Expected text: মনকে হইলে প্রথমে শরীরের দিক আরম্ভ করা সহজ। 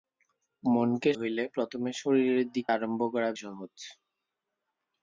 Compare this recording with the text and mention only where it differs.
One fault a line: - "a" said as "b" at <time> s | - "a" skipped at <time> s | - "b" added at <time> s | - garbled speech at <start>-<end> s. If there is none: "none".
none